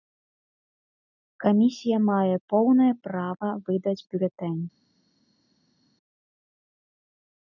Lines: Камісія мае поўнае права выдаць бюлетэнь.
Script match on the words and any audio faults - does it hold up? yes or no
yes